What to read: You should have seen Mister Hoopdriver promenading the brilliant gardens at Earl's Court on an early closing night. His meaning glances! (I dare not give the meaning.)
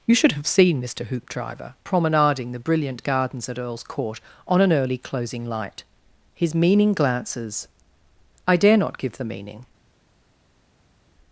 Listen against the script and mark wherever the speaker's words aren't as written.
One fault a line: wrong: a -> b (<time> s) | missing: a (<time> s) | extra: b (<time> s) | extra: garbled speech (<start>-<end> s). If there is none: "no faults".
wrong: night -> light (5.5 s)